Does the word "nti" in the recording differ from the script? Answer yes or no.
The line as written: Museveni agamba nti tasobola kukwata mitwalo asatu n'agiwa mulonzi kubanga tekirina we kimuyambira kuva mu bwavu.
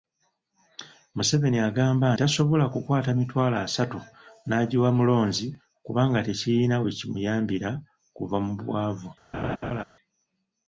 yes